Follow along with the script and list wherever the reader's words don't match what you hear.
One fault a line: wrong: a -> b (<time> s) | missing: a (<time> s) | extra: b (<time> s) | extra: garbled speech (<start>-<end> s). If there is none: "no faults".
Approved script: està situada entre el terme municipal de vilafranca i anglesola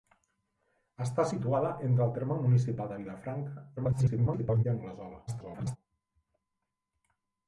extra: garbled speech (3.8-4.6 s)
extra: garbled speech (5.3-5.8 s)